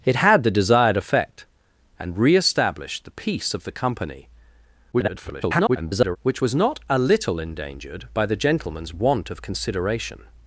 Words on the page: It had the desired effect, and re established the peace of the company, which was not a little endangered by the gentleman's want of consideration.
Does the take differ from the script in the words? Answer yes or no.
yes